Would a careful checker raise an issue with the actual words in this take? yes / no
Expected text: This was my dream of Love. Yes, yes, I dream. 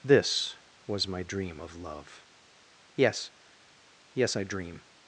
no